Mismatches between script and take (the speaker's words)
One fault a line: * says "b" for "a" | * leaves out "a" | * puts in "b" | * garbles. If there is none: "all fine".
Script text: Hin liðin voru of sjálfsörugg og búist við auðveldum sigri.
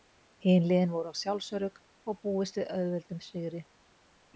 all fine